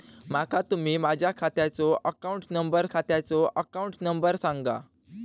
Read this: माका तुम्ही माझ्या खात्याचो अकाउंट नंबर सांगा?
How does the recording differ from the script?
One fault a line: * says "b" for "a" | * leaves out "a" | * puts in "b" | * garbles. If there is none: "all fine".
* puts in "खात्याचो अकाउंट नंबर"